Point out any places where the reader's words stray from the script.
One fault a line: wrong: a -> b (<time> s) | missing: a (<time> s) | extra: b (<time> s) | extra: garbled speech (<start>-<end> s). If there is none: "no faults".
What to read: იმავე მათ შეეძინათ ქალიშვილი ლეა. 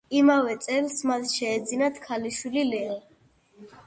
extra: წელს (0.7 s)